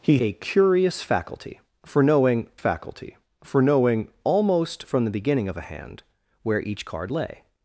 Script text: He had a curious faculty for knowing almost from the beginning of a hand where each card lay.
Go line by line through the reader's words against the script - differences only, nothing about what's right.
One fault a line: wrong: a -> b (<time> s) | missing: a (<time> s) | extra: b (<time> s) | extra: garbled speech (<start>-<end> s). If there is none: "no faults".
missing: had (0.2 s)
extra: faculty for knowing (2.5 s)